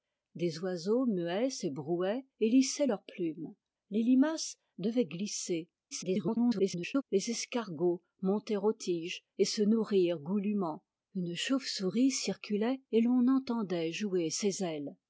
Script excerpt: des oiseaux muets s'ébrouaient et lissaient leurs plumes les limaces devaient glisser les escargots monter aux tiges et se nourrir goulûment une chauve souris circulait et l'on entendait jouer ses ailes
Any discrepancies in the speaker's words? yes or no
yes